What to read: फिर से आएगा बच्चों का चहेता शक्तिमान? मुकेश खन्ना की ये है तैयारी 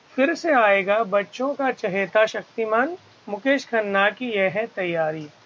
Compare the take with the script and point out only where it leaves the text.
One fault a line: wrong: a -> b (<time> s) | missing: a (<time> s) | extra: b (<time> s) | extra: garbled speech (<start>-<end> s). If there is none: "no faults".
no faults